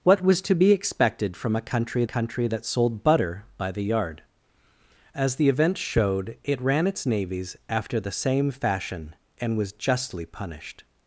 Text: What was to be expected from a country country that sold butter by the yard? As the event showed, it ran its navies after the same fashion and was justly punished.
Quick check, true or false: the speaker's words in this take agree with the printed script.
true